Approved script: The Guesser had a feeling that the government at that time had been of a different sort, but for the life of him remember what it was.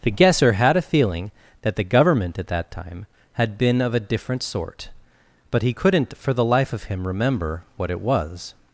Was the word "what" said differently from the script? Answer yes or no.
no